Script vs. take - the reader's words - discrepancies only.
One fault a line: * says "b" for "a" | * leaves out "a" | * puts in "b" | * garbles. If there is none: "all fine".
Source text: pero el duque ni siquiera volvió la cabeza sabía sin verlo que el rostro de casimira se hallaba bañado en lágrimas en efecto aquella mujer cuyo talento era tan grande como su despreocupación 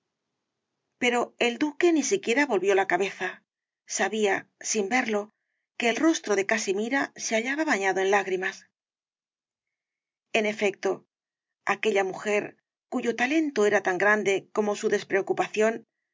all fine